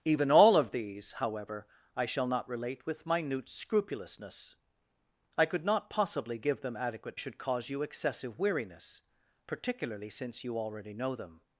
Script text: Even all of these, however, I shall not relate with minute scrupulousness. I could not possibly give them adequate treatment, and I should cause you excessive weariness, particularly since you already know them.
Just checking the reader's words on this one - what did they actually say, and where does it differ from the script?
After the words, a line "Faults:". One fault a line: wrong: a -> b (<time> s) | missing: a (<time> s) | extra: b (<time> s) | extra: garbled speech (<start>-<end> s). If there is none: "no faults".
Even all of these, however, I shall not relate with minute scrupulousness. I could not possibly give them adequate should cause you excessive weariness, particularly since you already know them.
Faults:
missing: treatment and I (7.2 s)